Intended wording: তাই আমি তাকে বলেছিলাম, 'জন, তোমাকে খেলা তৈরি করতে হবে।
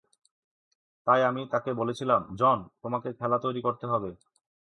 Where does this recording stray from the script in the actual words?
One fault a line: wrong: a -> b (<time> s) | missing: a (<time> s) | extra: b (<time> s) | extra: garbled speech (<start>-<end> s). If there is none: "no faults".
no faults